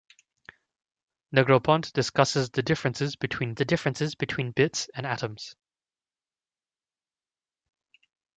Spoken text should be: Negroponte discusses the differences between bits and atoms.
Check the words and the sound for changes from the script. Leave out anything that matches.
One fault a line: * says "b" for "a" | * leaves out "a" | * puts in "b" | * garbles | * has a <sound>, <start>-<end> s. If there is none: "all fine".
* puts in "the differences between"